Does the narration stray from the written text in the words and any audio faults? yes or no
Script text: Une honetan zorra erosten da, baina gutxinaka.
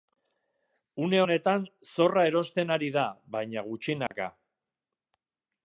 yes